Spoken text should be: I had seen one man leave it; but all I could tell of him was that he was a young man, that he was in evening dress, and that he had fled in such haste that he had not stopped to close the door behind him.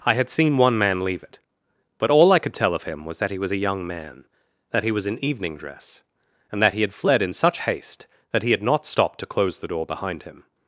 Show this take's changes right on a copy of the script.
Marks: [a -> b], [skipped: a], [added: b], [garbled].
I had seen one man leave it; but all I could tell of him was that he was a young man, that he was in evening dress, and that he had fled in such haste that he had not stopped to close the door behind him.